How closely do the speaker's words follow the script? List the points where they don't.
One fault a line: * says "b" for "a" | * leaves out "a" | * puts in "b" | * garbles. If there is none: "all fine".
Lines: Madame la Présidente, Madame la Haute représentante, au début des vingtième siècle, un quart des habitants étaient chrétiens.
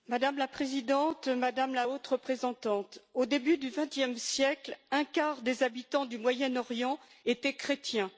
* says "du" for "des"
* puts in "du Moyen Orient"